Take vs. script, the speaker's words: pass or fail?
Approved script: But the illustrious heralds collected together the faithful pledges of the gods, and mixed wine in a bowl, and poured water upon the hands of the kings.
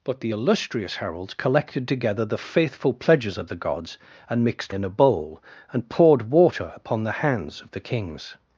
fail